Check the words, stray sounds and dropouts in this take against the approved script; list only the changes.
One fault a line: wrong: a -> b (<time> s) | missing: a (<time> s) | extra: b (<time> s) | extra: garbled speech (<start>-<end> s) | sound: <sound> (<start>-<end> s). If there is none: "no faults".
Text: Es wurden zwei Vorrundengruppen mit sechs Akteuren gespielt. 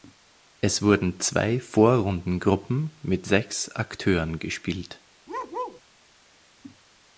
sound: bark (5.3-5.8 s)